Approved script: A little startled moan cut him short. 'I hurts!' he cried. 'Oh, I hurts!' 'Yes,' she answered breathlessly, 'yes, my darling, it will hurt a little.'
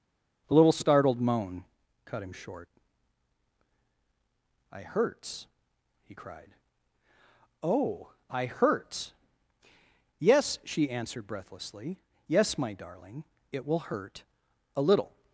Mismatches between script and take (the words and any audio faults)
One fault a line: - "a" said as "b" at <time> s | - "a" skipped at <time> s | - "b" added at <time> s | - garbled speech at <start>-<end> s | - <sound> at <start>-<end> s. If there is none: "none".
- "A" said as "The" at 0.5 s